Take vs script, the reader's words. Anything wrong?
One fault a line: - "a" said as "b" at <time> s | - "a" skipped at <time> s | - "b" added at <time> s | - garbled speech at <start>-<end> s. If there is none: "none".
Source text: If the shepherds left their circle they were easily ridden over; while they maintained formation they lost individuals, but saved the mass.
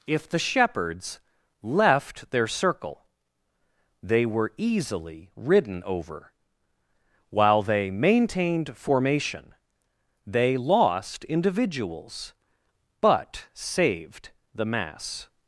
none